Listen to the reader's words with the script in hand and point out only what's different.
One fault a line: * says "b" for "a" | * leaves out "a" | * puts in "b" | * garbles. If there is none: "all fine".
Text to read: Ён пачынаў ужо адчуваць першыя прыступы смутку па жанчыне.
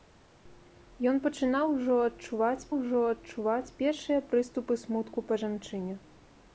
* puts in "ужо адчуваць"